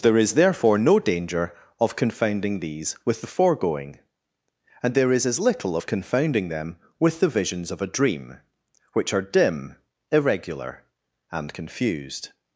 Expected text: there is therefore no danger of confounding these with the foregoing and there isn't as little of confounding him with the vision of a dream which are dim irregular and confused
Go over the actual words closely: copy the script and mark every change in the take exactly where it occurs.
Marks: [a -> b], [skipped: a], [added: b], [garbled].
there is therefore no danger of confounding these with the foregoing and there [isn't -> is] as little of confounding [him -> them] with the [vision -> visions] of a dream which are dim irregular and confused